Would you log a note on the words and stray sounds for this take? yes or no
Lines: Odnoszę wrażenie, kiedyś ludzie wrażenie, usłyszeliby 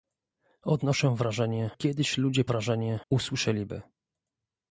no